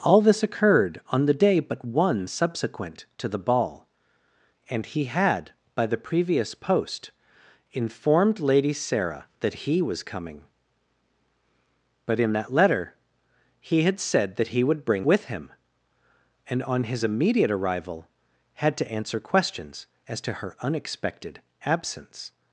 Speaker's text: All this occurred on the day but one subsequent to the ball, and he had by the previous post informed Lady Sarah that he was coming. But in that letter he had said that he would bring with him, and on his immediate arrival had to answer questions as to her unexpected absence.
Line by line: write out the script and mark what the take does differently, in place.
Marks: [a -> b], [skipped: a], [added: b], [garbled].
All this occurred on the day but one subsequent to the ball, and he had by the previous post informed Lady Sarah that he was coming. But in that letter he had said that he would bring with him, and on his immediate arrival had to answer questions as to her unexpected absence.